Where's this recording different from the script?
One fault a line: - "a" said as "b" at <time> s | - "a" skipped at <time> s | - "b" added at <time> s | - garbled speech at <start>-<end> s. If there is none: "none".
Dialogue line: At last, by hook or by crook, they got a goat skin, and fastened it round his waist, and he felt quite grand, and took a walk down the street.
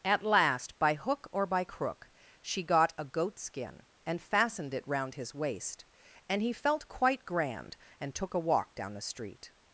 - "they" said as "she" at 2.4 s